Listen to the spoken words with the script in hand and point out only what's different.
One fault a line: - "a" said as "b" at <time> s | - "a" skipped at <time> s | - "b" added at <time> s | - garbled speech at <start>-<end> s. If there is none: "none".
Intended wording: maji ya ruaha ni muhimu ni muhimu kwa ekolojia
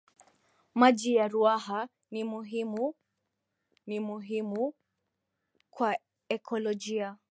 none